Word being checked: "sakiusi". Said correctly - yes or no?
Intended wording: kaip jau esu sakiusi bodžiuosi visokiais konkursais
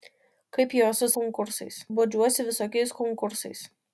no